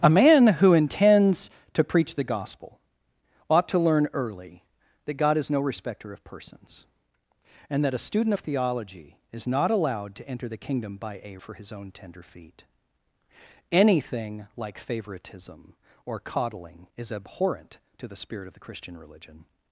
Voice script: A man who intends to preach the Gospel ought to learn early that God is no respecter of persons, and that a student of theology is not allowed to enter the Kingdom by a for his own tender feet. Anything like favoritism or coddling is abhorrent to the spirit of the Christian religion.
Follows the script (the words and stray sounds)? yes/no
yes